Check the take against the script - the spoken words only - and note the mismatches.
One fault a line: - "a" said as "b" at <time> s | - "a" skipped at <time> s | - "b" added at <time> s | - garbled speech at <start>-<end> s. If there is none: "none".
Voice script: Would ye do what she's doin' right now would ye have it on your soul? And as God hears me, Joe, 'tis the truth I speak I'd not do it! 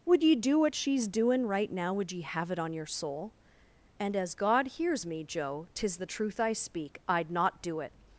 none